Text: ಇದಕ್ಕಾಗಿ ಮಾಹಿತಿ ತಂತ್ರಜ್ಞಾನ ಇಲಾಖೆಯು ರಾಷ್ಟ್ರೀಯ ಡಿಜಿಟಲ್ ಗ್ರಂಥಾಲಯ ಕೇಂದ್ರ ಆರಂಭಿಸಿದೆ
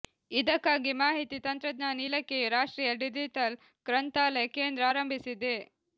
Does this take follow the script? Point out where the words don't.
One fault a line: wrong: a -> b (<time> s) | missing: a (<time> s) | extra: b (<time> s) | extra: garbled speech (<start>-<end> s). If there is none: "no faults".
no faults